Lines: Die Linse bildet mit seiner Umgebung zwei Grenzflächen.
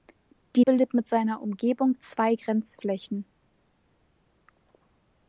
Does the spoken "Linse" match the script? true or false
false